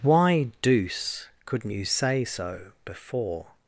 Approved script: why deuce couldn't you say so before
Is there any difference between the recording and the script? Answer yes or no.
no